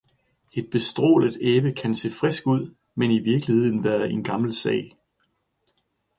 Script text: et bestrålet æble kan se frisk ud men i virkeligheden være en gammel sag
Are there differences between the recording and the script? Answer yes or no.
no